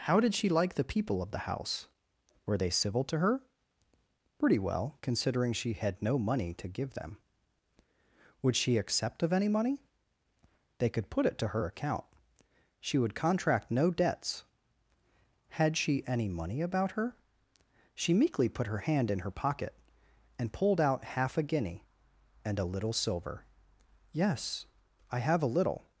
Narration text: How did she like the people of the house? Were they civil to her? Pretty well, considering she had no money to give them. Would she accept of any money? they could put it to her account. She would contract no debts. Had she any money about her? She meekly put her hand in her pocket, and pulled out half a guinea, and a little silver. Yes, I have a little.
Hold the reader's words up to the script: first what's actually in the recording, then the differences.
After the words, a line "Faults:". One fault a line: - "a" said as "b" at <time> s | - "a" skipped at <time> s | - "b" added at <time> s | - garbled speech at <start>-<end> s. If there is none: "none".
How did she like the people of the house? Were they civil to her? Pretty well, considering she had no money to give them. Would she accept of any money? they could put it to her account. She would contract no debts. Had she any money about her? She meekly put her hand in her pocket, and pulled out half a guinea, and a little silver. Yes, I have a little.
Faults:
none